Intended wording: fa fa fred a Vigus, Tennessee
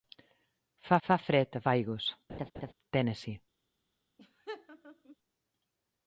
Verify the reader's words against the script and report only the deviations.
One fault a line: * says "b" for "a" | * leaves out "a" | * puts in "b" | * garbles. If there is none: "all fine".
all fine